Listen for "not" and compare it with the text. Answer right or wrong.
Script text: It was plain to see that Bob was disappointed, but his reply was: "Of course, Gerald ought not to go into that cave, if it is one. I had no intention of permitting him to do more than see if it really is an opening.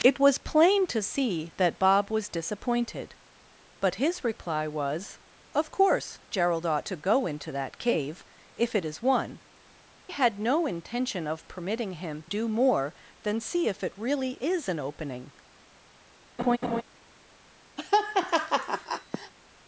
wrong